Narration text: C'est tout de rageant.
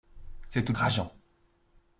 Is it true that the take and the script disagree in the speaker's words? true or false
false